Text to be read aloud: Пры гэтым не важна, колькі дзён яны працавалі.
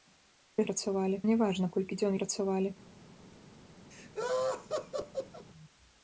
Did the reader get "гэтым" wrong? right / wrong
wrong